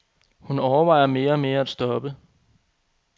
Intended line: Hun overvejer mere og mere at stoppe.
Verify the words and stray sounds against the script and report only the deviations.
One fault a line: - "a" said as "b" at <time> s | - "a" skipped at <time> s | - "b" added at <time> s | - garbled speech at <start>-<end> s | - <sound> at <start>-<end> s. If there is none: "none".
none